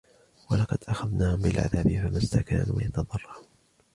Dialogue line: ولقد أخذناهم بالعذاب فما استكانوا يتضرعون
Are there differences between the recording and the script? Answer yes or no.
no